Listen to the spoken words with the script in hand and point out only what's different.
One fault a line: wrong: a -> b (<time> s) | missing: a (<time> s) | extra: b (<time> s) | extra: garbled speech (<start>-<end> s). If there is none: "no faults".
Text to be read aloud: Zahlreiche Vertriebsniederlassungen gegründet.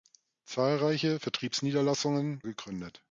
no faults